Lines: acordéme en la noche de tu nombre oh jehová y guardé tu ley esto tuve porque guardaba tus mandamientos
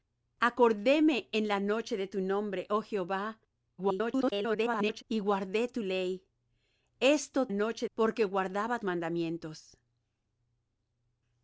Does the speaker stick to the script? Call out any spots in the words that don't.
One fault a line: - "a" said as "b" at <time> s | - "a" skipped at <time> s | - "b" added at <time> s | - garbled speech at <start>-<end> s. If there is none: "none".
- garbled speech at 3.8-5.0 s
- "tuve" said as "noche" at 7.5 s
- "tus" skipped at 8.8 s